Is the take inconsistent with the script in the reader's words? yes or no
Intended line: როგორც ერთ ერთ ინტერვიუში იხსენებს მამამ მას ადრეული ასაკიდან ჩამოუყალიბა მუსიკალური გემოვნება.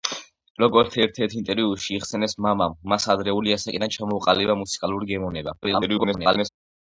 yes